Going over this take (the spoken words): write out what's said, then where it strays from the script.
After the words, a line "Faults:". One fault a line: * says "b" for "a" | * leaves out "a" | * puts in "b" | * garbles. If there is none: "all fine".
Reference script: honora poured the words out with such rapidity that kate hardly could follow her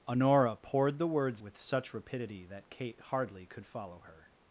honora poured the words with such rapidity that kate hardly could follow her
Faults:
* leaves out "out"